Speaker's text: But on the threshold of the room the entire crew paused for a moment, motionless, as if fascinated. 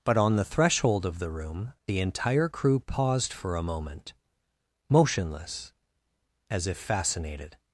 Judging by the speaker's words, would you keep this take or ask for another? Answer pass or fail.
pass